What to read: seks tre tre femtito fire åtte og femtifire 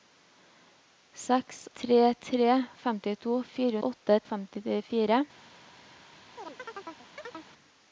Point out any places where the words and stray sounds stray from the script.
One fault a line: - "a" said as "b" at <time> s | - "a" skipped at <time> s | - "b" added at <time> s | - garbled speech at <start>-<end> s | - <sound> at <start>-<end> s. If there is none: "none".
- chirp at 6.4-7.5 s